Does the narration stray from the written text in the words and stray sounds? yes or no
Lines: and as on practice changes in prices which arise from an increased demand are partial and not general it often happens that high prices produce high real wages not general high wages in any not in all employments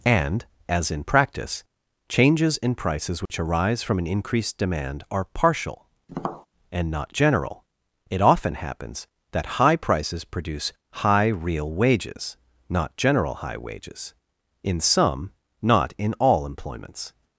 yes